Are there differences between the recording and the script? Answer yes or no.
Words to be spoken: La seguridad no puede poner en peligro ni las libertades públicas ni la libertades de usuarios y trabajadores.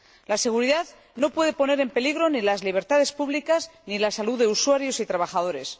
yes